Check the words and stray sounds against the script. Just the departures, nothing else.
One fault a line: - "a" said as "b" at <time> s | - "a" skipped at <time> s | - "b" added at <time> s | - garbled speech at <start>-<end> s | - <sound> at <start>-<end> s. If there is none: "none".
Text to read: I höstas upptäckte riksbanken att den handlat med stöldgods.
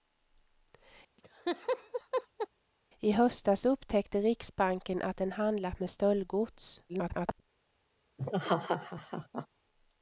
- laugh at 1.2-2.5 s
- garbled speech at 6.9-7.4 s
- laugh at 8.2-9.5 s